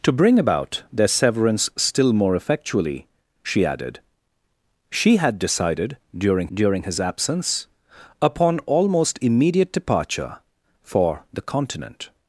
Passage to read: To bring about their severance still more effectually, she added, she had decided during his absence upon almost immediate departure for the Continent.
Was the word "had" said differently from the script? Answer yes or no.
no